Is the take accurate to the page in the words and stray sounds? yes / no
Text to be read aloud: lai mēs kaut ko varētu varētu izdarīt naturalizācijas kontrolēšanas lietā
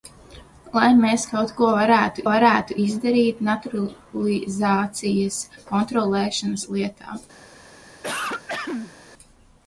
no